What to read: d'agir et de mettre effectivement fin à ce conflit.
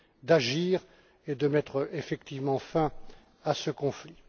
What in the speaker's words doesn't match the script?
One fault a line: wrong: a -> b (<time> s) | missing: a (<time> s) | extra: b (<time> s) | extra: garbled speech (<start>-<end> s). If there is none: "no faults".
no faults